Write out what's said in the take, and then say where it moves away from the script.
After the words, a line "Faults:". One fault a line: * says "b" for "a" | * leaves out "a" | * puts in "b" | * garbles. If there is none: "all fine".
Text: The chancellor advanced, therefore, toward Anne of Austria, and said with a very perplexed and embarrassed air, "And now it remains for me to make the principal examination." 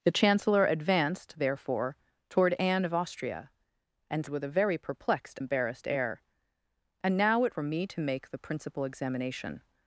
The chancellor advanced, therefore, toward Anne of Austria, and with a very perplexed embarrassed air, "And now it for me to make the principal examination."
Faults:
* leaves out "said"
* leaves out "and"
* leaves out "remains"